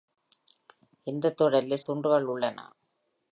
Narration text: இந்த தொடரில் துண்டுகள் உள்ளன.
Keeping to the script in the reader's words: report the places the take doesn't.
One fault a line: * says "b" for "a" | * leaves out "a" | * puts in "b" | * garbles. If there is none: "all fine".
all fine